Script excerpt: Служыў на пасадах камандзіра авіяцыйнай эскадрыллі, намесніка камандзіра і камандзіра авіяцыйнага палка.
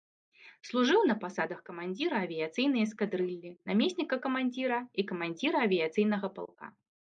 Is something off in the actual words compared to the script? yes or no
no